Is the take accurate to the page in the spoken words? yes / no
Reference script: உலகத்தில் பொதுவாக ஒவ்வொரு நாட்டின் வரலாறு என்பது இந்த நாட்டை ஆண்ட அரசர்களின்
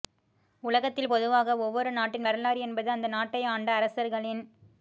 no